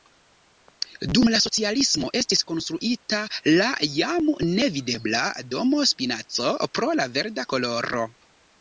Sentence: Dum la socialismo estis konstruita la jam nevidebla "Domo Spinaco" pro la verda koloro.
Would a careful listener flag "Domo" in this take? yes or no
no